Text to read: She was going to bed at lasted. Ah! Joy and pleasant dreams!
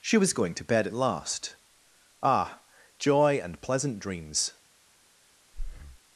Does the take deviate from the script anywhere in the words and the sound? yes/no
yes